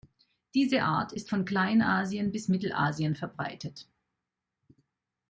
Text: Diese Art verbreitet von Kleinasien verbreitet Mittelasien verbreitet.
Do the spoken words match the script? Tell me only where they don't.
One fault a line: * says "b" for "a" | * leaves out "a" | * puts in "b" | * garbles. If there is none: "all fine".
* says "ist" for "verbreitet"
* says "bis" for "verbreitet"